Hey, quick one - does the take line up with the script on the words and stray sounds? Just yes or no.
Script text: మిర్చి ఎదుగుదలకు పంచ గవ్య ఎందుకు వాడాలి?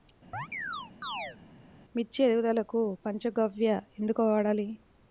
no